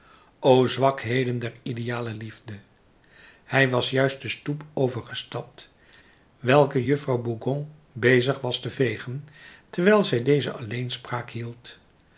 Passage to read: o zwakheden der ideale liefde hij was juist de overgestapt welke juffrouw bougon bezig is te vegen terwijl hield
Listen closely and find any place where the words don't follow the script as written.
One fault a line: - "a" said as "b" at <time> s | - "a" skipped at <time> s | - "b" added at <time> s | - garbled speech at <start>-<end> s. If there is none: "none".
- "stoep" added at 4.3 s
- "is" said as "was" at 8.4 s
- "zij deze alleenspraak" added at 10.0 s